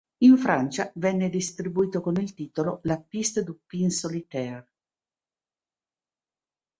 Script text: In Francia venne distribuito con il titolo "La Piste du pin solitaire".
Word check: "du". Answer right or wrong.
right